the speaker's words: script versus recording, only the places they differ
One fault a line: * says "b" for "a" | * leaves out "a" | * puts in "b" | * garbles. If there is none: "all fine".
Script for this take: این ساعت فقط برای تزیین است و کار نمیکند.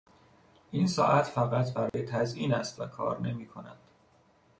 all fine